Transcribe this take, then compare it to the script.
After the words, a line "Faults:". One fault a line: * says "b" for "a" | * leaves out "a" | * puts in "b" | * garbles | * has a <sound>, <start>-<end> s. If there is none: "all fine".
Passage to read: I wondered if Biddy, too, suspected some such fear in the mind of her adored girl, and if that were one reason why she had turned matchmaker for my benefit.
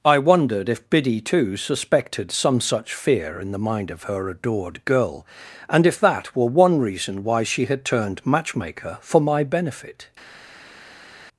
I wondered if Biddy, too, suspected some such fear in the mind of her adored girl, and if that were one reason why she had turned matchmaker for my benefit.
Faults:
all fine